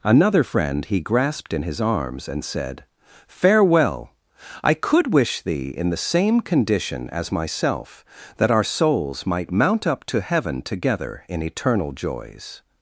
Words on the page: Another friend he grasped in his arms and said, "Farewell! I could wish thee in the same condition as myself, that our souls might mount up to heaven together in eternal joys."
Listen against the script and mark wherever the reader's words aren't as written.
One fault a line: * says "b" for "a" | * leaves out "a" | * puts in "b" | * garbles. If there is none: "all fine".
all fine